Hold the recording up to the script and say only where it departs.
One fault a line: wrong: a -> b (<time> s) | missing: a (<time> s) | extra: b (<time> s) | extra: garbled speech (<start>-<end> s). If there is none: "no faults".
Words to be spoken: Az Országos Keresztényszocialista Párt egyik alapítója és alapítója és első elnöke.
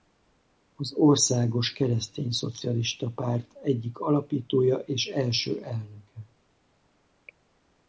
missing: alapítója és (5.1 s)